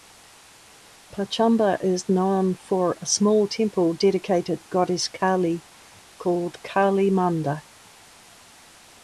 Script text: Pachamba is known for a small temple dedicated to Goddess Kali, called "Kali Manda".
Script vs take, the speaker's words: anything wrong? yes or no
yes